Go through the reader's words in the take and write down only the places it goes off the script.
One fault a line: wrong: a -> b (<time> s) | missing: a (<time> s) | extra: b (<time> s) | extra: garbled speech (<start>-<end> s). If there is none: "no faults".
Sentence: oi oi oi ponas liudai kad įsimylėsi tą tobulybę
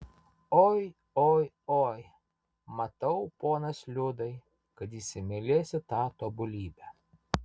extra: matau (2.8 s)